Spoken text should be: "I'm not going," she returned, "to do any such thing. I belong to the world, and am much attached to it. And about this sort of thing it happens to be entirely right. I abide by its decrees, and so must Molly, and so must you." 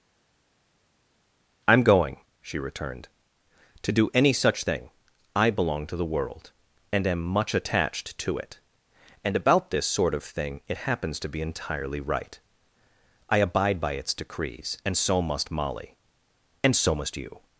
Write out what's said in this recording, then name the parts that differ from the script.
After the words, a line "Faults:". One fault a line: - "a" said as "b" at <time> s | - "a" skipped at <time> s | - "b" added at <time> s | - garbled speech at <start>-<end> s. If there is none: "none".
"I'm going," she returned, "to do any such thing. I belong to the world, and am much attached to it. And about this sort of thing it happens to be entirely right. I abide by its decrees, and so must Molly, and so must you."
Faults:
- "not" skipped at 1.8 s